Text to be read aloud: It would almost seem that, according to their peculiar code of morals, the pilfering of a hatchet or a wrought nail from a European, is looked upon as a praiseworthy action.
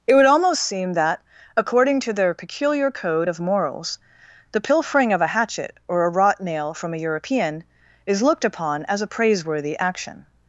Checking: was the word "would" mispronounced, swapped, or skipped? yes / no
no